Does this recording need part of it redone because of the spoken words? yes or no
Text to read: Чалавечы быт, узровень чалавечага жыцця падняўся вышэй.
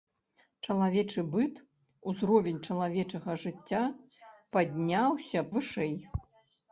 no